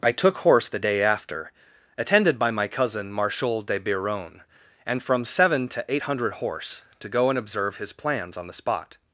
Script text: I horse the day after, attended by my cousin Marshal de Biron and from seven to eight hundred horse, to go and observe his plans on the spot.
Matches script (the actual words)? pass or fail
fail